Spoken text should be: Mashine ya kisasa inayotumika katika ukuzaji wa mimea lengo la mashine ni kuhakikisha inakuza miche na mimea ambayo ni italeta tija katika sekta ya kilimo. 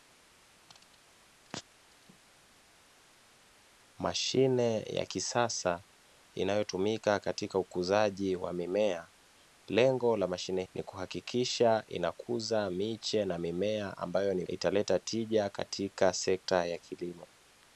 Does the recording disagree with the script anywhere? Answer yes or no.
no